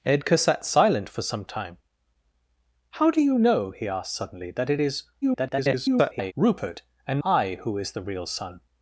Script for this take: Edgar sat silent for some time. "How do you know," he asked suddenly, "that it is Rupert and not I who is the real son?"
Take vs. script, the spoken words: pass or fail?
fail